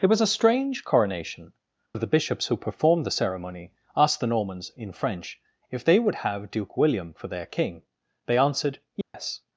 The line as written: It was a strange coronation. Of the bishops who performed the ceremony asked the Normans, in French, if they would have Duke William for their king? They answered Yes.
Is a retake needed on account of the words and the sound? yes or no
yes